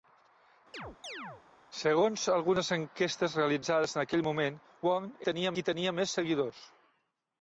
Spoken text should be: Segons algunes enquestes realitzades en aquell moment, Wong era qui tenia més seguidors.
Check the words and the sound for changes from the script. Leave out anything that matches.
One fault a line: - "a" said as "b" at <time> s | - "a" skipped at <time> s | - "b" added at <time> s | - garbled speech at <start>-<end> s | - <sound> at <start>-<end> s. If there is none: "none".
- chirp at 0.7-1.4 s
- "era" said as "tenia" at 5.3 s